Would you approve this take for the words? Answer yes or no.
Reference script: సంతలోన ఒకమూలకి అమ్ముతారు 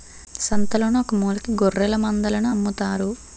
no